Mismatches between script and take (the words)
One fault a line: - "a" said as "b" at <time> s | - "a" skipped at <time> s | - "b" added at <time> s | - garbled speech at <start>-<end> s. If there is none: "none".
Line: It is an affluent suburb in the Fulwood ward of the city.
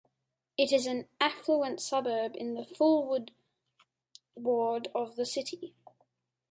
none